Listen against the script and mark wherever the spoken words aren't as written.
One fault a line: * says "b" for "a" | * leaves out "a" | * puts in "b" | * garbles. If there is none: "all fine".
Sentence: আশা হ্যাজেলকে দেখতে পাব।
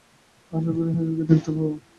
* puts in "করি"